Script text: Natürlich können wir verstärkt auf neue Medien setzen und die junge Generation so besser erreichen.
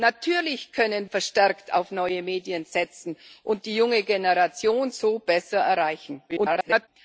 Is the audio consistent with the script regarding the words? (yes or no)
no